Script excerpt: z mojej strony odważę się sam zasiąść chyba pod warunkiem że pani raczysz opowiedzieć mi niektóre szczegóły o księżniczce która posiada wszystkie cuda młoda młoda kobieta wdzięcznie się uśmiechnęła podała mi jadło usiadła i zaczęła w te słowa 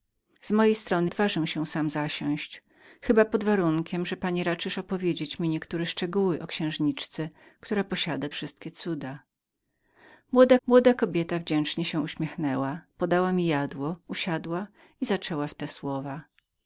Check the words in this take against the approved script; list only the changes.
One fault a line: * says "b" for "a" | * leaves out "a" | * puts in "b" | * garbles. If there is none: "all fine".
all fine